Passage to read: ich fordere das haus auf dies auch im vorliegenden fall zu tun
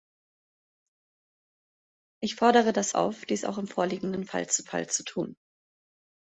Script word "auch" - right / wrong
right